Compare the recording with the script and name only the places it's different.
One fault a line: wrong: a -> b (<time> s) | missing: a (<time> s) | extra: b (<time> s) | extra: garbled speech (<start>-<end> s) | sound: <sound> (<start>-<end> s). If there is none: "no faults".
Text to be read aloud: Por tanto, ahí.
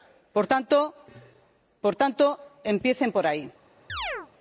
extra: empiecen por (2.6 s)
sound: chirp (3.9-4.3 s)